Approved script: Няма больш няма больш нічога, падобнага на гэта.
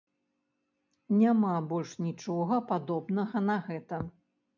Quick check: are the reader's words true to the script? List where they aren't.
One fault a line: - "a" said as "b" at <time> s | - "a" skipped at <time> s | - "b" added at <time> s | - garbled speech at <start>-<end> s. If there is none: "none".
- "няма больш" skipped at 1.9 s